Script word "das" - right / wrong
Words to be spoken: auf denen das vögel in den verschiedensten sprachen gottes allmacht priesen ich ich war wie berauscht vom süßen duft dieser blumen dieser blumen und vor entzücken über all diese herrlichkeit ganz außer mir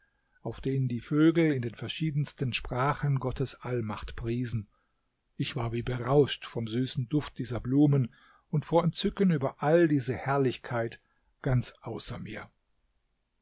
wrong